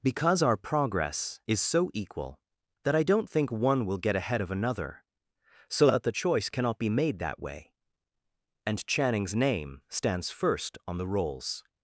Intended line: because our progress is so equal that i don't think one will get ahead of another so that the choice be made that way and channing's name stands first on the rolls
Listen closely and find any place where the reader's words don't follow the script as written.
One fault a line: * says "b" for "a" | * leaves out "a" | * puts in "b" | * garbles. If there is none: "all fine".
* puts in "cannot"